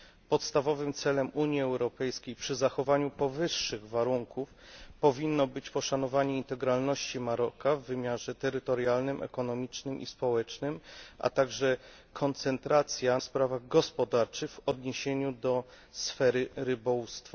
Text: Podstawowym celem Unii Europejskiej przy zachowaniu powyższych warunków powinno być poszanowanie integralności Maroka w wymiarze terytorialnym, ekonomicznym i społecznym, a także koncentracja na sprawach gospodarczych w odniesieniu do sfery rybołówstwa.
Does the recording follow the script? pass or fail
fail